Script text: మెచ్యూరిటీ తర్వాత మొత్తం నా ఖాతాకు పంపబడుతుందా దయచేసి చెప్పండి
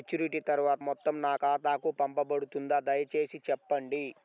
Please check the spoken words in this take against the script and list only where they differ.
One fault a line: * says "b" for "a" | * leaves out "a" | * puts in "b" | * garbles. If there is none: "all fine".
all fine